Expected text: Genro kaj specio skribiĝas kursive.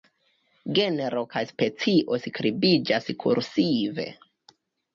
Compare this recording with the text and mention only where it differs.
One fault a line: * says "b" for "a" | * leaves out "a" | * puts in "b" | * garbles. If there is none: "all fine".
all fine